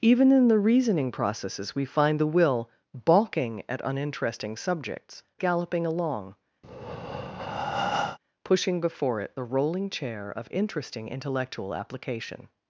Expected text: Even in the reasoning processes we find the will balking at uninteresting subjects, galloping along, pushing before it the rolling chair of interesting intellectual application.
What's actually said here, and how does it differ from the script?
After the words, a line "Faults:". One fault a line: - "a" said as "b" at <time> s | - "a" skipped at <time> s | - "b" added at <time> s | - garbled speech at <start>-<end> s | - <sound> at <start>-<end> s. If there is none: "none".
Even in the reasoning processes we find the will balking at uninteresting subjects, galloping along, pushing before it the rolling chair of interesting intellectual application.
Faults:
- breath at 6.6-8.2 s